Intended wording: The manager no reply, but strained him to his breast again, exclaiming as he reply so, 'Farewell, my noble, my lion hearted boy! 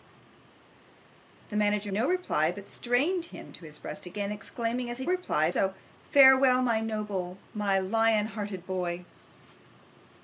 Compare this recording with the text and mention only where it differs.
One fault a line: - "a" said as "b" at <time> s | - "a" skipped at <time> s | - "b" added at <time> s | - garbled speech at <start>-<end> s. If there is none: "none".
none